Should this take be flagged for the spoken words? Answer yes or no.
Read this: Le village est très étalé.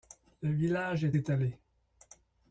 yes